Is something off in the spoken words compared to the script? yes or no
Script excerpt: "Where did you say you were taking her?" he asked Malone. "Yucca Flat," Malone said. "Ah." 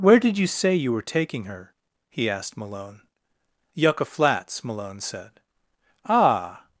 yes